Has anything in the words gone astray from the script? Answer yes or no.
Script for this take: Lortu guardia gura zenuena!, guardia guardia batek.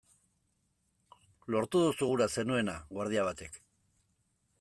yes